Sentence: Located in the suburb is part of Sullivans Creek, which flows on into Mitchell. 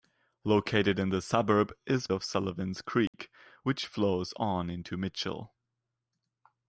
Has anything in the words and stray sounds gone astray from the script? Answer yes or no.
yes